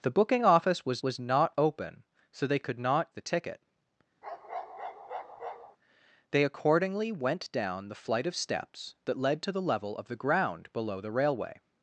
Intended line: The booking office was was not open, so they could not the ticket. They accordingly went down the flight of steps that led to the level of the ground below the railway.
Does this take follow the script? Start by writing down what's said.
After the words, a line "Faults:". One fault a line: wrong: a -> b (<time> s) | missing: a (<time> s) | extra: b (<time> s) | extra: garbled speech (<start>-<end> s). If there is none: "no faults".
The booking office was was not open, so they could not the ticket. They accordingly went down the flight of steps that led to the level of the ground below the railway.
Faults:
no faults